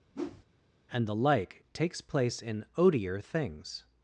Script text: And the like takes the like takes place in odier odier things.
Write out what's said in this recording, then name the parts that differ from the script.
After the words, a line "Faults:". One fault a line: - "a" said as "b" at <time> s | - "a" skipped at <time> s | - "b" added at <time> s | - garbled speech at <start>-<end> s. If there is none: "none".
And the like takes place in odier things.
Faults:
- "the like takes" skipped at 2.0 s
- "odier" skipped at 3.2 s